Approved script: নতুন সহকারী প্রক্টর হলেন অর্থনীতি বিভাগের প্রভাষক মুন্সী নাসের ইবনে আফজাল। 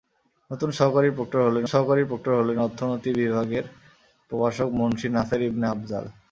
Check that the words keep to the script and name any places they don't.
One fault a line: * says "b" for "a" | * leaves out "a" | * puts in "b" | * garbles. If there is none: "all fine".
* puts in "সহকারী প্রক্টর হলেন"